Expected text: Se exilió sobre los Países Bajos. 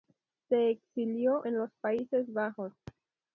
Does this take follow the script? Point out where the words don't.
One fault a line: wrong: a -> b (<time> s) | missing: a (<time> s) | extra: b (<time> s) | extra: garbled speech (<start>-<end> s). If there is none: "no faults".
wrong: sobre -> en (1.4 s)